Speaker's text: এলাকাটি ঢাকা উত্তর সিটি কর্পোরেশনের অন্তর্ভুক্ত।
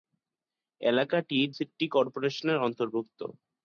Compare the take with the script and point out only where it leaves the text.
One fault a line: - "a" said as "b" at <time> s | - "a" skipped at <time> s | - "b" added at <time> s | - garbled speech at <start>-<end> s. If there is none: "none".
- "ঢাকা উত্তর" skipped at 1.4 s